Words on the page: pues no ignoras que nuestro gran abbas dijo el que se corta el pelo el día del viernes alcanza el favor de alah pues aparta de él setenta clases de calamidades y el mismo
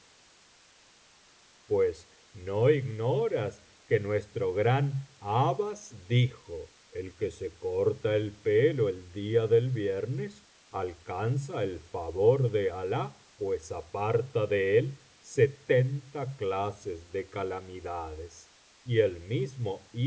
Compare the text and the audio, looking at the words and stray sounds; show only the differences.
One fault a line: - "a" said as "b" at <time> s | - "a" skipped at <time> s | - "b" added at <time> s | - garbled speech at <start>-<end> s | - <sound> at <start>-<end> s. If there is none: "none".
none